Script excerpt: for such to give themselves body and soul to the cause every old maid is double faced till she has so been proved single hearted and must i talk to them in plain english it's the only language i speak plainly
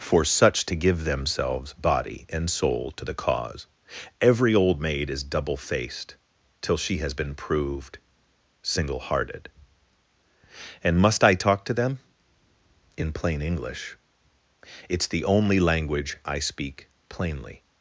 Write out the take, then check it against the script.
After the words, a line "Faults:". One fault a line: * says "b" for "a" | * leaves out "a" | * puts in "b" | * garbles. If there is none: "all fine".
for such to give themselves body and soul to the cause every old maid is double faced till she has been proved single hearted and must i talk to them in plain english it's the only language i speak plainly
Faults:
* leaves out "so"